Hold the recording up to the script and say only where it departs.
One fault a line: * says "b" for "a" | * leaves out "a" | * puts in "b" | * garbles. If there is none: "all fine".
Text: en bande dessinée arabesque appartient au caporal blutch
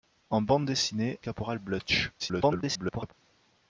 * leaves out "arabesque appartient au"
* garbles